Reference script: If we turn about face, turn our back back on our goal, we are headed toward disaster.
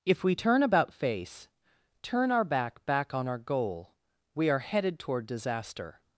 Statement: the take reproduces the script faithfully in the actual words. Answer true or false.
true